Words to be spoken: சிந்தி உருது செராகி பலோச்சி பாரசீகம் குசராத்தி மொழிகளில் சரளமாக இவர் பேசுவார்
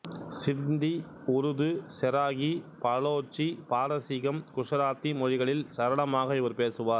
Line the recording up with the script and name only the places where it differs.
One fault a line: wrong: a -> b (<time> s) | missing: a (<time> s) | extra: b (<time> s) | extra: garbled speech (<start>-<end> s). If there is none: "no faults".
no faults